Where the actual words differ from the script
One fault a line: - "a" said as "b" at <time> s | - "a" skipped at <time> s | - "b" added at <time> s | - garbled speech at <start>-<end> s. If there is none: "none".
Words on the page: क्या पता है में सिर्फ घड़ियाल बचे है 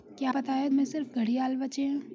none